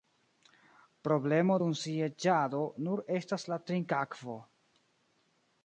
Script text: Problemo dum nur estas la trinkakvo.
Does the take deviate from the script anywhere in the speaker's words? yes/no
yes